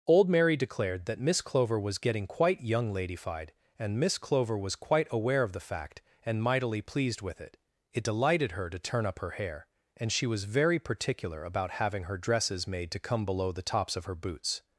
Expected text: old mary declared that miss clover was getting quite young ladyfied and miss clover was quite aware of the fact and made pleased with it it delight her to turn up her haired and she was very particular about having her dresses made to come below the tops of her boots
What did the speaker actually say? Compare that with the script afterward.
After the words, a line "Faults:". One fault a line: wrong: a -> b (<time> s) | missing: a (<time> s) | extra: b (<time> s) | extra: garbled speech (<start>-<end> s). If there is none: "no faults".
old mary declared that miss clover was getting quite young ladyfied and miss clover was quite aware of the fact and mightily pleased with it it delighted her to turn up her hair and she was very particular about having her dresses made to come below the tops of her boots
Faults:
wrong: made -> mightily (6.4 s)
wrong: delight -> delighted (8.0 s)
wrong: haired -> hair (9.3 s)